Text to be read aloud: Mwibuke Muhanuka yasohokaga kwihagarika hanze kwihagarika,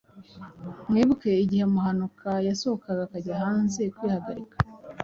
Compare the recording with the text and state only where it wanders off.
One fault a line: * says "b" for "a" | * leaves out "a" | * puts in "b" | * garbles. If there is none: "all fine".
* puts in "igihe"
* says "akajya" for "kwihagarika"